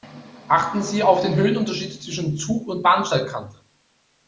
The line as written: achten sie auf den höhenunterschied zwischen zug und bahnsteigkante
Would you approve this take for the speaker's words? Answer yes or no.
yes